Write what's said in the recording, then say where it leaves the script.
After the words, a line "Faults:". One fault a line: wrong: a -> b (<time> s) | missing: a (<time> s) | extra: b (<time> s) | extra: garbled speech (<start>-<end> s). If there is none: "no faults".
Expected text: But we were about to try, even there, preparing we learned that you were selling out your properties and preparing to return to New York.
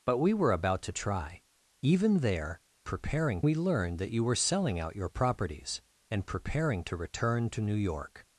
But we were about to try, even there, preparing we learned that you were selling out your properties and preparing to return to New York.
Faults:
no faults